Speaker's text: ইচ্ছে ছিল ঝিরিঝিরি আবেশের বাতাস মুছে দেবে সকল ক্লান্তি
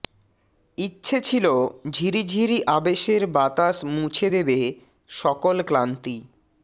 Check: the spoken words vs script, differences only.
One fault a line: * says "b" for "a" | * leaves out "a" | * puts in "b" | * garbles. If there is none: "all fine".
all fine